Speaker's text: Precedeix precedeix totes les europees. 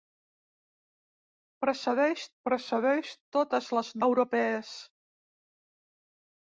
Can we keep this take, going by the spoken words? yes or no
yes